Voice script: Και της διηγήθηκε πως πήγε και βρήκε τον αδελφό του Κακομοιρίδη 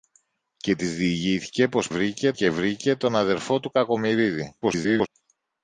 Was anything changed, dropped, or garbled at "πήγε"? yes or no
yes